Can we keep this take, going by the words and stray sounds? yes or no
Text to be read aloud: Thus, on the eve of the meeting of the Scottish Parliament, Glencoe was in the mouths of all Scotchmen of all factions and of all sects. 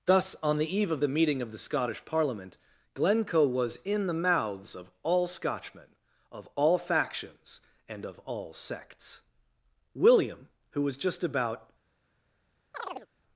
no